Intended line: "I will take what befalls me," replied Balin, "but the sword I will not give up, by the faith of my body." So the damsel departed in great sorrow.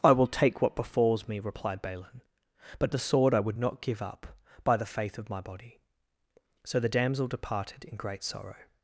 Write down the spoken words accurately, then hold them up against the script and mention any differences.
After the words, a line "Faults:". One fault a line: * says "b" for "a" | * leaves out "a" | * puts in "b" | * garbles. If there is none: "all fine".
"I will take what befalls me," replied Balin, "but the sword I would not give up, by the faith of my body." So the damsel departed in great sorrow.
Faults:
* says "would" for "will"